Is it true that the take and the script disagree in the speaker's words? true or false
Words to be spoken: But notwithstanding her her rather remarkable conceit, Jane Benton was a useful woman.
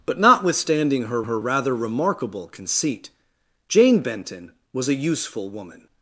false